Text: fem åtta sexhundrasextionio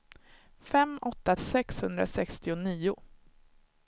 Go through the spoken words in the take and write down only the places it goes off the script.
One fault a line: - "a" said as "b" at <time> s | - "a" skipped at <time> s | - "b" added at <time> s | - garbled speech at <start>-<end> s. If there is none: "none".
none